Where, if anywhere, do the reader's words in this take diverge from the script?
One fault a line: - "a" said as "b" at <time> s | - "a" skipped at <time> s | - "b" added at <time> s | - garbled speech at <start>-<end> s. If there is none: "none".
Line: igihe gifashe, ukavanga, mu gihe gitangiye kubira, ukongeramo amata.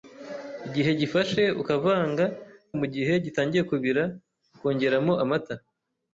none